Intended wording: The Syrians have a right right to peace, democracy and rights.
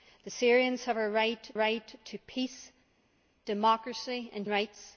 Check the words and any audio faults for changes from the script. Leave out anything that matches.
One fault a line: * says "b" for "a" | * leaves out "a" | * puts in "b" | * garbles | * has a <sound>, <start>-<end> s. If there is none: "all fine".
all fine